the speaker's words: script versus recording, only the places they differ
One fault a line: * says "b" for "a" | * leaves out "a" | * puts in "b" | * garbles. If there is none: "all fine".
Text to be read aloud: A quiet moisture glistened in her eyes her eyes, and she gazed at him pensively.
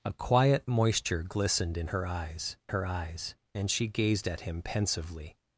all fine